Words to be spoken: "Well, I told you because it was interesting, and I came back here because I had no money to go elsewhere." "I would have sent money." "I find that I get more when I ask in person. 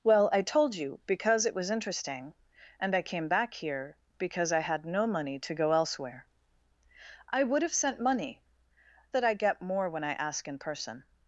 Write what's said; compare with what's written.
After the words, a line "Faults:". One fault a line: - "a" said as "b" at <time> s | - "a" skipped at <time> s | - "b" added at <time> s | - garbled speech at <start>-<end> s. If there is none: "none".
"Well, I told you because it was interesting, and I came back here because I had no money to go elsewhere." "I would have sent money." "that I get more when I ask in person.
Faults:
- "I find" skipped at 8.4 s